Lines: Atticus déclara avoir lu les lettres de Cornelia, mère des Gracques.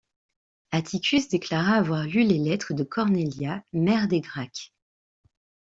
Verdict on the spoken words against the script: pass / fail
pass